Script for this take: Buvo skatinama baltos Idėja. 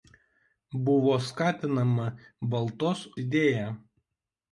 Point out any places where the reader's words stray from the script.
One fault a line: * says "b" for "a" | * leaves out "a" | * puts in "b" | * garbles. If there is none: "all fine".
all fine